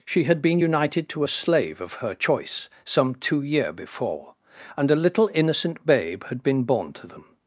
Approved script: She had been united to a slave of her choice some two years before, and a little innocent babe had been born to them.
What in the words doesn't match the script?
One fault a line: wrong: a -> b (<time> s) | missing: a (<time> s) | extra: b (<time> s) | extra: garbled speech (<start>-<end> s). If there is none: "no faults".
wrong: years -> year (3.4 s)